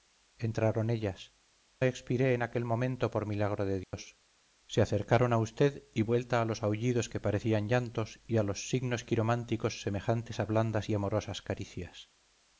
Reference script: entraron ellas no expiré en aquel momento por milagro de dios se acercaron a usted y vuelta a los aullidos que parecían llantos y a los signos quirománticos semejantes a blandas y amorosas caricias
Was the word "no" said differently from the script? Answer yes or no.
yes